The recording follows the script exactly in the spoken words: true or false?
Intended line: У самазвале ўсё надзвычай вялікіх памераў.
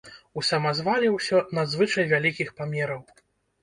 true